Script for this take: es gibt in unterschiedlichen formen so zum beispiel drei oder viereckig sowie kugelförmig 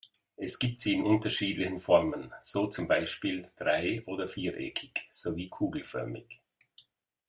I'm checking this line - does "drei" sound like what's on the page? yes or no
yes